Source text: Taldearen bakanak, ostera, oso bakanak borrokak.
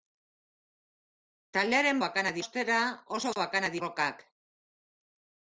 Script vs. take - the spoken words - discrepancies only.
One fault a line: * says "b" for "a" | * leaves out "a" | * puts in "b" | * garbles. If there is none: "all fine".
all fine